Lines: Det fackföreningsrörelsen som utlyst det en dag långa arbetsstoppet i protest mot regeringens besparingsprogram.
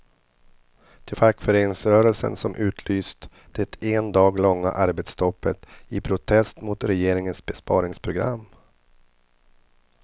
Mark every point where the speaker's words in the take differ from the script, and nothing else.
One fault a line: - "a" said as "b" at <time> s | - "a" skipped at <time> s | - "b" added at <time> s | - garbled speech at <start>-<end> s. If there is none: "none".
none